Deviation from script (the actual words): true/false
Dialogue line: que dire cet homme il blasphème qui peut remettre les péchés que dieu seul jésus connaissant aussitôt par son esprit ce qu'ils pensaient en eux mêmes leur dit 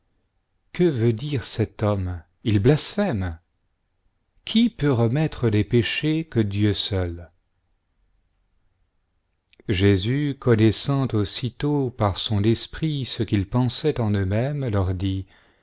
true